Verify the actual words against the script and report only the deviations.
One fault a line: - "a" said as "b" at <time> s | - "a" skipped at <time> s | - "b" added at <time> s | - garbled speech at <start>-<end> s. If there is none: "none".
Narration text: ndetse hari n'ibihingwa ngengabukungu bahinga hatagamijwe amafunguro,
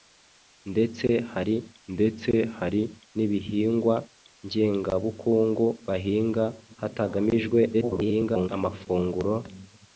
- "ndetse hari" added at 1.9 s
- garbled speech at 7.7-8.5 s